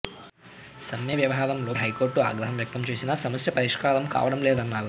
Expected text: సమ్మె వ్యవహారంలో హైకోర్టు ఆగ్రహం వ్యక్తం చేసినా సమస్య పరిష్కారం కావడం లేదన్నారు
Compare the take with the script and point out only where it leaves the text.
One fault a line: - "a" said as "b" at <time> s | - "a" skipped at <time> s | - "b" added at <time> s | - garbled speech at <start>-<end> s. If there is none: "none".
none